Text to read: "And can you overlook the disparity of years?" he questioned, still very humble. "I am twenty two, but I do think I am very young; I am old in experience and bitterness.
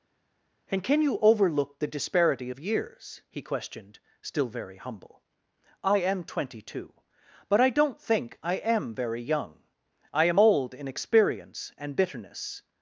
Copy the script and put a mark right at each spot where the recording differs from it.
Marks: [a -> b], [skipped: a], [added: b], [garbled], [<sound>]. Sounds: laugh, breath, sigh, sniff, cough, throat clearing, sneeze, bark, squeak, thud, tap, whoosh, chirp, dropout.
"And can you overlook the disparity of years?" he questioned, still very humble. "I am twenty two, but I [do -> don't] think I am very young; I am old in experience and bitterness.